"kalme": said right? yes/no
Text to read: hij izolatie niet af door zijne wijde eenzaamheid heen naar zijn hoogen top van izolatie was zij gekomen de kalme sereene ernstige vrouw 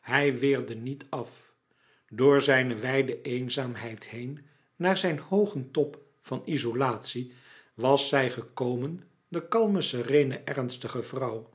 yes